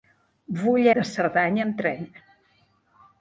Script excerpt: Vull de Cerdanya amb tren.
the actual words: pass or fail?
pass